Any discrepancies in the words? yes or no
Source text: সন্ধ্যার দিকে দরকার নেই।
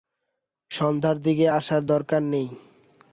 yes